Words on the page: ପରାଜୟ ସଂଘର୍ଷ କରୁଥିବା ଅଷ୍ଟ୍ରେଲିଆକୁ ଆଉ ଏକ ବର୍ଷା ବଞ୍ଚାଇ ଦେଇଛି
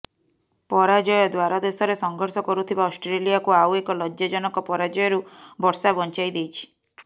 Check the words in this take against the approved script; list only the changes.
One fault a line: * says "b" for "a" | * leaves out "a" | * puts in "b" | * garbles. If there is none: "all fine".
* puts in "ଦ୍ୱାରଦେଶରେ"
* puts in "ଲଜ୍ଜାଜନକ ପରାଜୟରୁ"